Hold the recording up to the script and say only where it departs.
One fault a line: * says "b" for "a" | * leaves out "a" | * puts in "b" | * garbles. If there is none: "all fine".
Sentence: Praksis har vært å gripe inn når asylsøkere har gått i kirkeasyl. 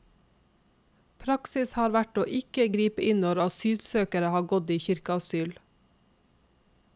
* puts in "ikke"